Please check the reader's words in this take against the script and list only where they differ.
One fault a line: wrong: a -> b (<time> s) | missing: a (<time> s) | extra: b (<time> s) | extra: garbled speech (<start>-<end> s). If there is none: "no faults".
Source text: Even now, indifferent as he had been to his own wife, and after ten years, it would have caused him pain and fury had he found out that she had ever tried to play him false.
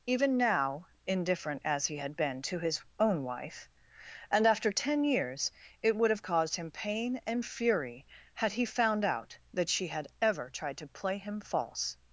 no faults